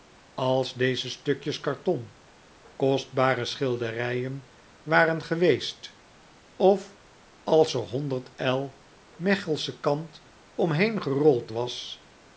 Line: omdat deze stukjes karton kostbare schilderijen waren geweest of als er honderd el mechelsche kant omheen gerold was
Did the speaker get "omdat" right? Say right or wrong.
wrong